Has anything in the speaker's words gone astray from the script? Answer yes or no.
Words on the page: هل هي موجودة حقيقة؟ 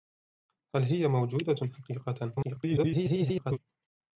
yes